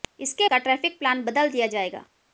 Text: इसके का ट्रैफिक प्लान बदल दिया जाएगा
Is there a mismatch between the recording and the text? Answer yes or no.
no